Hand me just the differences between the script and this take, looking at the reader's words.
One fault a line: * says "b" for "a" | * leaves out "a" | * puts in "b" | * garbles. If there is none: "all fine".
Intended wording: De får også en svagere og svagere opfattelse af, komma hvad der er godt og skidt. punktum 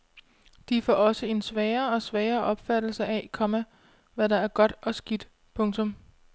all fine